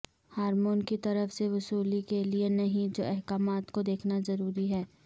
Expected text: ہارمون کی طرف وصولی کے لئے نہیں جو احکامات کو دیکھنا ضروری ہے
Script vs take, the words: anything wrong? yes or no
yes